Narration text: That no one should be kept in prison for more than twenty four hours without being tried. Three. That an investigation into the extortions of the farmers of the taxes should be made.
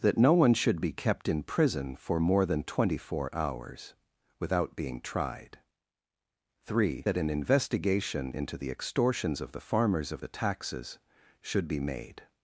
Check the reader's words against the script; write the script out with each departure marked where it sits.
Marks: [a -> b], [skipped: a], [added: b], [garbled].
That no one should be kept in prison for more than twenty four hours without being tried. Three. That an investigation into the extortions of the farmers of the taxes should be made.